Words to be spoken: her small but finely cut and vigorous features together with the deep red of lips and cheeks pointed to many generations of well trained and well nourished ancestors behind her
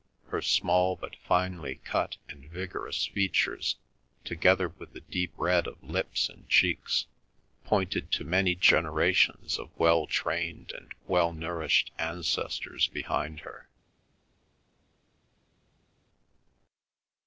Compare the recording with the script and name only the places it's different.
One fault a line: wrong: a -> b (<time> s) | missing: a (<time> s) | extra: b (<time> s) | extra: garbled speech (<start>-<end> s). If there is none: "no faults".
no faults